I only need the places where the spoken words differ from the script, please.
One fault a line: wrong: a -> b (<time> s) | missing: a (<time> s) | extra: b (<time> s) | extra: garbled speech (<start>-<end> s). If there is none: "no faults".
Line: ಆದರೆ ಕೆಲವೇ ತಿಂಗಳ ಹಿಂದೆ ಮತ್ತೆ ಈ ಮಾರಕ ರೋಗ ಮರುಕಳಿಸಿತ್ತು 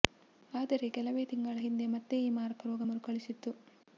no faults